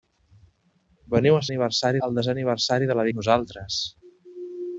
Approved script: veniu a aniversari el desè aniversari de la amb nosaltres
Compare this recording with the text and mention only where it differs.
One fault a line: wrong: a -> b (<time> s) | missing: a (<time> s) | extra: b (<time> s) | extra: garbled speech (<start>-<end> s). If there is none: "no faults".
no faults